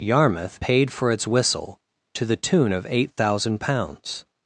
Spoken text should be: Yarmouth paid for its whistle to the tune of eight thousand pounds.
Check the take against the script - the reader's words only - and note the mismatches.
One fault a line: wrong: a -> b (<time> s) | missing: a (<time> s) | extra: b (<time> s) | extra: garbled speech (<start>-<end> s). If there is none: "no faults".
no faults